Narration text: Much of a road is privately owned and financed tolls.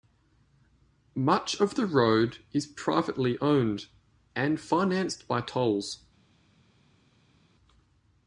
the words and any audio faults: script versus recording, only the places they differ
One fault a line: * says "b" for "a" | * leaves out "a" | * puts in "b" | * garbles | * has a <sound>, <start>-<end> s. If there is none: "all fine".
* says "the" for "a"
* puts in "by"